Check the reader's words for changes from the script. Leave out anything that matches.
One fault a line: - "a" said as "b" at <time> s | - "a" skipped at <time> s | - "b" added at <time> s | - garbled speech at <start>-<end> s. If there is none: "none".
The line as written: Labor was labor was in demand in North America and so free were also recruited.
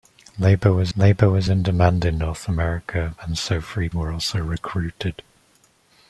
none